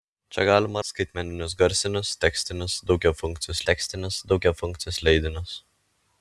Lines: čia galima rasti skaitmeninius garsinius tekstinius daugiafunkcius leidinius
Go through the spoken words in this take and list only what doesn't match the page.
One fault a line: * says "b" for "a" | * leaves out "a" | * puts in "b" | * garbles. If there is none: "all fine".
* leaves out "rasti"
* puts in "tekstinius daugiafunkcius"